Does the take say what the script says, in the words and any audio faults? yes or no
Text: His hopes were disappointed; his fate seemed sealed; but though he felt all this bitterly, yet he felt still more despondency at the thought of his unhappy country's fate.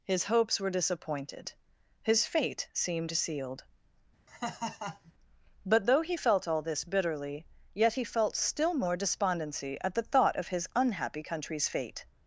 no